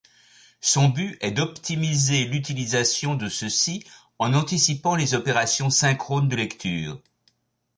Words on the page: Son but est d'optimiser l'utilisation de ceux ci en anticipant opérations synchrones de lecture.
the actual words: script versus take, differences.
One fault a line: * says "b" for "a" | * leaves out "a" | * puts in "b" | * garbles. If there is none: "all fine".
* puts in "les"